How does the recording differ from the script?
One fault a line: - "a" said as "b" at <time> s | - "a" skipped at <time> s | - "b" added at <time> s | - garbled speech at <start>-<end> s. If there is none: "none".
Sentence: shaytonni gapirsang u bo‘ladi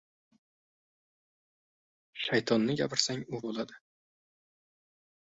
none